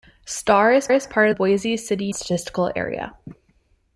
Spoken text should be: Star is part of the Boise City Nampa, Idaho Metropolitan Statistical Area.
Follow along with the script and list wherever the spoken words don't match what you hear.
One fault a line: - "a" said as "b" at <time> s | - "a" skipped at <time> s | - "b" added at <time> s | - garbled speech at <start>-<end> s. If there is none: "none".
- "is" added at 0.9 s
- "the" skipped at 1.3 s
- "Nampa Idaho Metropolitan" skipped at 2.1 s